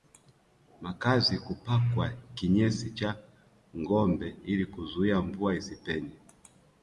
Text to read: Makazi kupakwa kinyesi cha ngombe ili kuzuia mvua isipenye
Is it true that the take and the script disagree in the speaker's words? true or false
false